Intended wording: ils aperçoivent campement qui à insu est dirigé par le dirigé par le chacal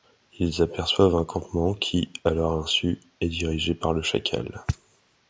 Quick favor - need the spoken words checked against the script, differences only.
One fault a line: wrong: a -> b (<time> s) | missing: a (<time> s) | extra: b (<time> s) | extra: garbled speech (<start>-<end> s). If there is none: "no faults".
extra: un (1.1 s)
extra: leur (2.3 s)
missing: dirigé par le (4.0 s)